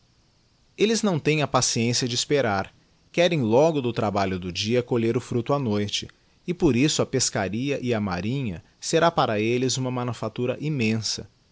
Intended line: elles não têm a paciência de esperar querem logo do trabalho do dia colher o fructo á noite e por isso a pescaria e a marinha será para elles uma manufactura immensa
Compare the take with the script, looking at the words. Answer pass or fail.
pass